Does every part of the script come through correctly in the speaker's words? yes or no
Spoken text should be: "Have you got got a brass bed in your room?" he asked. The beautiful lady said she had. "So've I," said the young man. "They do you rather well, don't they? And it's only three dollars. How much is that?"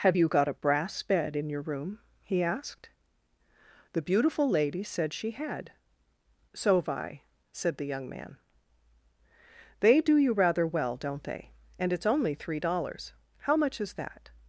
no